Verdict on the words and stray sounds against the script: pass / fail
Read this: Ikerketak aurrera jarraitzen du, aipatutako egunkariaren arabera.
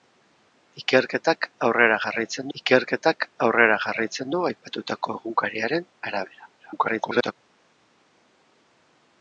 fail